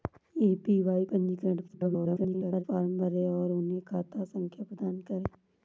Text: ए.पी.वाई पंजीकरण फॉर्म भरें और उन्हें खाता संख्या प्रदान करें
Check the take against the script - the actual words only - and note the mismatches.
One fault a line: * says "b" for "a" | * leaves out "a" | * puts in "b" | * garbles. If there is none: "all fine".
* garbles